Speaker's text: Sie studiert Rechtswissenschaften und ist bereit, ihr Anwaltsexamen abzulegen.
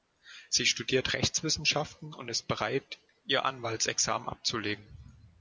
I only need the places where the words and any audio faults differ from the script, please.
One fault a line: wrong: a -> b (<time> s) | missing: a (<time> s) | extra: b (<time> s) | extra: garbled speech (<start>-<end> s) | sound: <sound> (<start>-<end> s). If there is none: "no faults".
no faults